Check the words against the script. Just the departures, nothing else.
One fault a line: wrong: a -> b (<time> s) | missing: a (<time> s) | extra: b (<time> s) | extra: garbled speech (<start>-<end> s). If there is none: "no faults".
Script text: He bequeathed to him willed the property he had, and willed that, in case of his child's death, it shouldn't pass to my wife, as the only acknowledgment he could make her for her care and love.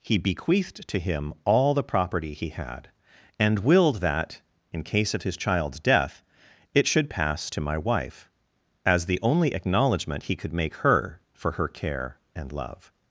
wrong: willed -> all (1.4 s)
wrong: shouldn't -> should (6.9 s)